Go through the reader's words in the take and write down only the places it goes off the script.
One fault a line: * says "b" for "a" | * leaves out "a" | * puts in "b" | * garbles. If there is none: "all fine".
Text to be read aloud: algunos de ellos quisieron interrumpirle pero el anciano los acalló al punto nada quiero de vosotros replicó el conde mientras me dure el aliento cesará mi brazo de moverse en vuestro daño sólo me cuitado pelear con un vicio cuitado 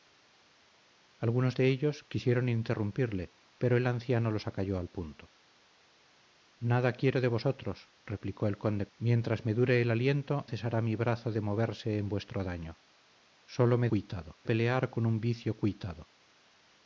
all fine